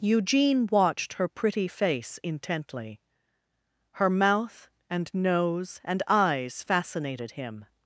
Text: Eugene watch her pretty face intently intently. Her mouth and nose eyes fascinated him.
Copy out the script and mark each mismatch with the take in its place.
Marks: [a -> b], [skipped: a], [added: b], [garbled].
Eugene [watch -> watched] her pretty face intently [skipped: intently.] Her mouth and nose [added: and] eyes fascinated him.